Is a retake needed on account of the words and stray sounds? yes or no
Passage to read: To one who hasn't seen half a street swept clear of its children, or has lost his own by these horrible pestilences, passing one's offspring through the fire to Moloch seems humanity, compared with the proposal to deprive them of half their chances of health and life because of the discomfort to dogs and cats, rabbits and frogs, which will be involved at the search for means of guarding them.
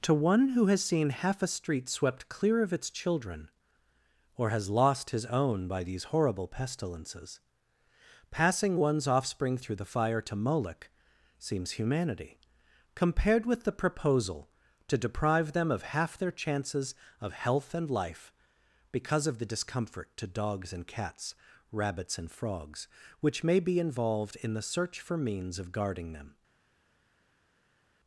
yes